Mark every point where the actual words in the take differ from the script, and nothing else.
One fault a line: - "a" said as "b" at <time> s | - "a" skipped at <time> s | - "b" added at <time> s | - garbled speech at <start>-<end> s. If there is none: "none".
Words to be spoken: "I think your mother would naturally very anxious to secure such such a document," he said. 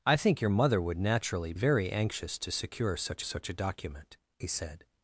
none